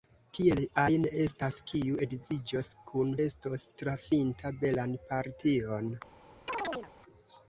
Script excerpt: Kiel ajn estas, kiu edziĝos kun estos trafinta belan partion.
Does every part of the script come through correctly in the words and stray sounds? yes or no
no